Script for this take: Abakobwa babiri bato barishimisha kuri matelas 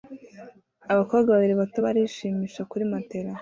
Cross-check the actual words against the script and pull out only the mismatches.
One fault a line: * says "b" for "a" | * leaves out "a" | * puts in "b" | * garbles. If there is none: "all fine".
all fine